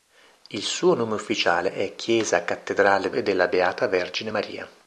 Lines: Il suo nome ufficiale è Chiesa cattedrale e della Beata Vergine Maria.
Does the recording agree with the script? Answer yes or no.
yes